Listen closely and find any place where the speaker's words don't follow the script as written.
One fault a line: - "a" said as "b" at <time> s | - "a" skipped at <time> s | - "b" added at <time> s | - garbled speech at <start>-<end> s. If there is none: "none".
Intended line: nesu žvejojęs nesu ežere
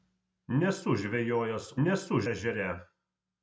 none